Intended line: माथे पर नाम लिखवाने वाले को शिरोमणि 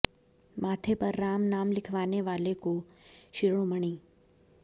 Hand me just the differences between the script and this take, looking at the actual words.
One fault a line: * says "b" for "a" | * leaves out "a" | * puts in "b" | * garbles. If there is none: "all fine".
* puts in "राम"